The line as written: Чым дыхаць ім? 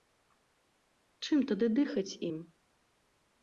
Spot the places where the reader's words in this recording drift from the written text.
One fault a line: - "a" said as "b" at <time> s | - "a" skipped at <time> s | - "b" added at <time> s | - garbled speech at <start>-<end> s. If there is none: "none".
- "тады" added at 1.5 s